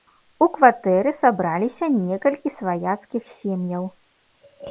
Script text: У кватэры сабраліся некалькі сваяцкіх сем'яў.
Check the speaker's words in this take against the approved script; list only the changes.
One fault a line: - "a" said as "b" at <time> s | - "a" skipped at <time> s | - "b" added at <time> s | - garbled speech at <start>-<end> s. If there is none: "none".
none